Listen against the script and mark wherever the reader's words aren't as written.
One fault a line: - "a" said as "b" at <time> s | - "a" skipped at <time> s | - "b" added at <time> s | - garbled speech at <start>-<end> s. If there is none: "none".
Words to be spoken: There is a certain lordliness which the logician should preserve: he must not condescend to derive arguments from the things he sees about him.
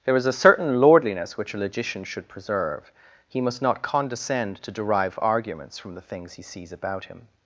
- "the" said as "a" at 1.5 s